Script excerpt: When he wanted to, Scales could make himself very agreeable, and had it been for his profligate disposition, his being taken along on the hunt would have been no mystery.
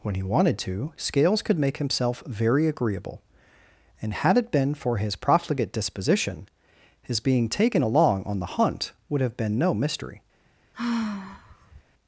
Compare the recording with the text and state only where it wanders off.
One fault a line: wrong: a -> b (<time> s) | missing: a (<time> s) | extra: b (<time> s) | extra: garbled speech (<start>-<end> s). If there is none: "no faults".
no faults